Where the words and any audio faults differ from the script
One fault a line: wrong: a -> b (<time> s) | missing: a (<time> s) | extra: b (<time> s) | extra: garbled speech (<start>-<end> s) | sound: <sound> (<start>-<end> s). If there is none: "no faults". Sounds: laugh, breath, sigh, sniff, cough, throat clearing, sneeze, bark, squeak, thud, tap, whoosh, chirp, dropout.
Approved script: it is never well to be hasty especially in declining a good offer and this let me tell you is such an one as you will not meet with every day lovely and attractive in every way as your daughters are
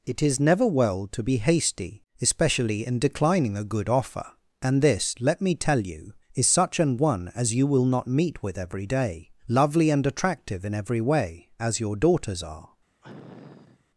sound: sniff (13.0-13.8 s)